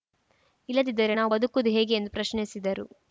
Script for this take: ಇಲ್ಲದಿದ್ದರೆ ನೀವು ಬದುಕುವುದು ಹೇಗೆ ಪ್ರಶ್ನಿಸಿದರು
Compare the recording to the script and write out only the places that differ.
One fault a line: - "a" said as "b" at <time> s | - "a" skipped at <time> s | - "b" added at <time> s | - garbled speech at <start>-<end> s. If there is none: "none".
- "ನೀವು" said as "ನಾವು" at 1.1 s
- "ಎಂದು" added at 1.9 s